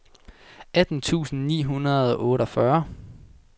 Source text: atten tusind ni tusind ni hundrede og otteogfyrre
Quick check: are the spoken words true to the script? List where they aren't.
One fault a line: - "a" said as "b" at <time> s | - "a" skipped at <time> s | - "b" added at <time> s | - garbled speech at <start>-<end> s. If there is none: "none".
- "tusind ni" skipped at 1.6 s